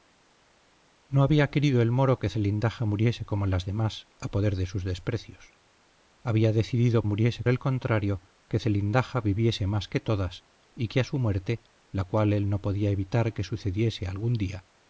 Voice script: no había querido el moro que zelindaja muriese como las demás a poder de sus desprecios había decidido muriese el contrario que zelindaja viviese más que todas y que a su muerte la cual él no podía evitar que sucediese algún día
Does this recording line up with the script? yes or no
yes